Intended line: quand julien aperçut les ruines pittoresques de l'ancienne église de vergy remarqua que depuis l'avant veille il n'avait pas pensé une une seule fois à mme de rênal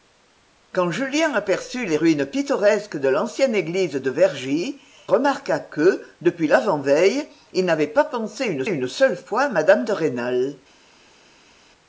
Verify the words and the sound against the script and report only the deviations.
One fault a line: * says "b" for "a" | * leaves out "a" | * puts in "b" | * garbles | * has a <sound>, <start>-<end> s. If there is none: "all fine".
all fine